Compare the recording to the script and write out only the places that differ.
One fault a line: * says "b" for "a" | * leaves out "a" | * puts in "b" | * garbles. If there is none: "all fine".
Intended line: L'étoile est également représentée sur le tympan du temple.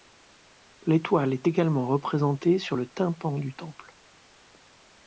all fine